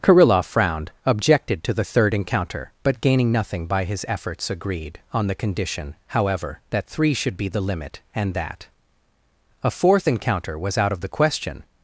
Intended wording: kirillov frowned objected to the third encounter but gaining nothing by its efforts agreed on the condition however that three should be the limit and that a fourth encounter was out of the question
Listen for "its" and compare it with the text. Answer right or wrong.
wrong